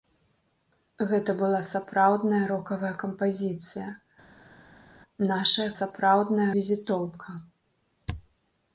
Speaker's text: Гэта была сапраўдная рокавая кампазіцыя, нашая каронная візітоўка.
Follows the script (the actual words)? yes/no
no